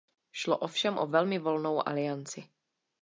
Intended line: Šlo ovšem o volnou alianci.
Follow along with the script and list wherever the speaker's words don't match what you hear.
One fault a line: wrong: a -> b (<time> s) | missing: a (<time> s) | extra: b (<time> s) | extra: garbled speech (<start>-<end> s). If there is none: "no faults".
extra: velmi (1.1 s)